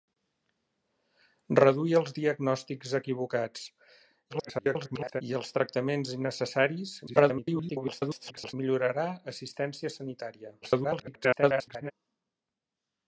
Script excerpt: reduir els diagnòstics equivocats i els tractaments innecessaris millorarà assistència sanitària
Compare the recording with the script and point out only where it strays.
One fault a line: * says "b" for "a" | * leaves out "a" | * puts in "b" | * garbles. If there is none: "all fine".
* garbles
* garbles
* garbles